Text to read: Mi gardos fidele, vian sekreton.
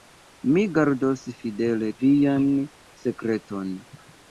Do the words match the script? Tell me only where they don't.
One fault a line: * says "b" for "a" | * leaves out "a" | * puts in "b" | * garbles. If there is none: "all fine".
all fine